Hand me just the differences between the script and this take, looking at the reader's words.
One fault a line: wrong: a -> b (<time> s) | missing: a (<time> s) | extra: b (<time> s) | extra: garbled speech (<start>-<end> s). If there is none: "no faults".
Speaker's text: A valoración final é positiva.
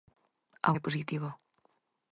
missing: valoración final (0.7 s)